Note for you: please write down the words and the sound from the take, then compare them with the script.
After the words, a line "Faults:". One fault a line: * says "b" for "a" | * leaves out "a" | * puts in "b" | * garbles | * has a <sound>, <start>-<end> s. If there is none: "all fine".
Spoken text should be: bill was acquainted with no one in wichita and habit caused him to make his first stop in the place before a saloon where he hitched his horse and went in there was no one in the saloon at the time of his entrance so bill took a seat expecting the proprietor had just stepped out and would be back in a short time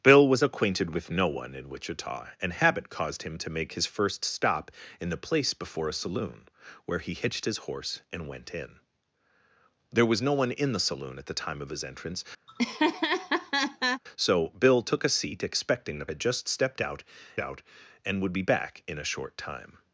bill was acquainted with no one in wichita and habit caused him to make his first stop in the place before a saloon where he hitched his horse and went in there was no one in the saloon at the time of his entrance so bill took a seat expecting the had just stepped out out and would be back in a short time
Faults:
* has a laugh, 12.5-14.0 s
* leaves out "proprietor"
* puts in "out"